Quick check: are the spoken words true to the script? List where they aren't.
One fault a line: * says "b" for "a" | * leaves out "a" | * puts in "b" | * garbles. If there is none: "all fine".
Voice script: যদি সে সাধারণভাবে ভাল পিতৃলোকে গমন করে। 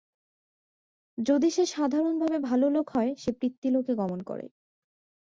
* puts in "লোক হয় সে"